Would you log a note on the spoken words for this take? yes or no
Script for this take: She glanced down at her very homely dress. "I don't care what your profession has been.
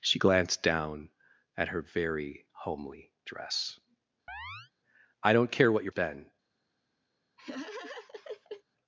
yes